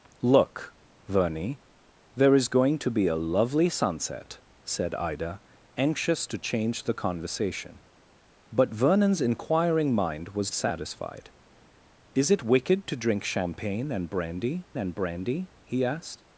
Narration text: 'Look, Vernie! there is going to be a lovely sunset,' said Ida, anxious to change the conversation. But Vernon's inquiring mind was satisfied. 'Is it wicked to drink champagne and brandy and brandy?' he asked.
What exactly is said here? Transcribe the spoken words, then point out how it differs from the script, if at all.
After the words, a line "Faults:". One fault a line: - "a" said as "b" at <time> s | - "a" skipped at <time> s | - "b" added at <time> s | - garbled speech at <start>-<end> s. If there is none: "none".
'Look, Vernie! there is going to be a lovely sunset,' said Ida, anxious to change the conversation. But Vernon's inquiring mind was satisfied. 'Is it wicked to drink champagne and brandy and brandy?' he asked.
Faults:
none